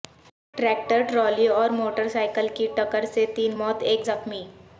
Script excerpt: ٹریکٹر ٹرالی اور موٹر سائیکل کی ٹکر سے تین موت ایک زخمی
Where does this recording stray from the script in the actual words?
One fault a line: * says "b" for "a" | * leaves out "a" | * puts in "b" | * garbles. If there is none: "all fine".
all fine